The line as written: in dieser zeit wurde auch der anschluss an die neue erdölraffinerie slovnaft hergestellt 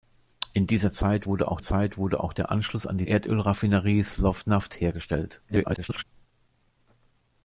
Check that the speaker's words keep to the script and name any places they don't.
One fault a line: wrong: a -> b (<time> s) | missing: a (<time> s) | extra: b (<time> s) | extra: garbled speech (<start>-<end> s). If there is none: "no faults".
extra: zeit wurde auch (1.6 s)
missing: neue (3.1 s)
extra: garbled speech (5.5-6.0 s)